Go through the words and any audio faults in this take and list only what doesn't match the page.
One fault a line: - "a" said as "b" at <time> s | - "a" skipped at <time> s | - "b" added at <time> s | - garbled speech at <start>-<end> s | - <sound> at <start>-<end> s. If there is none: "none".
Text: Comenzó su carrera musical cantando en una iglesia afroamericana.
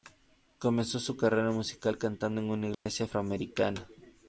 - dropout at 2.7-2.9 s